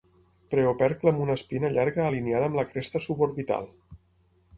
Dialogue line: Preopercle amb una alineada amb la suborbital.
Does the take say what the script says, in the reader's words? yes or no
no